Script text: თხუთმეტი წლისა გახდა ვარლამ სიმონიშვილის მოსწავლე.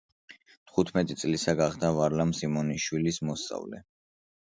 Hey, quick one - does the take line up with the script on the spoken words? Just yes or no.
yes